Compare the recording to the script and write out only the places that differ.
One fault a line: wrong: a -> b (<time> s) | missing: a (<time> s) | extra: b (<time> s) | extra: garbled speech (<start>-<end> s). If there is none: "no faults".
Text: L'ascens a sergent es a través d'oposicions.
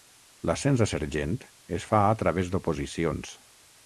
extra: fa (1.9 s)